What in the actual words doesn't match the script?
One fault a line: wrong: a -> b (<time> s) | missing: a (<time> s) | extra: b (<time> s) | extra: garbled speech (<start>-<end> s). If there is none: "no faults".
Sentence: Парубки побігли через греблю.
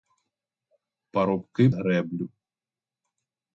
missing: побігли через (1.7 s)